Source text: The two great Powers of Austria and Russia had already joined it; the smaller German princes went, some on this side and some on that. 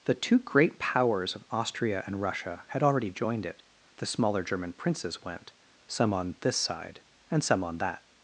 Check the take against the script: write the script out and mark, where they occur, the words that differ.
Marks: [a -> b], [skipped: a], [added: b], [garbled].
The two great Powers of Austria and Russia had already joined it; the smaller German princes went, some on this side and some on that.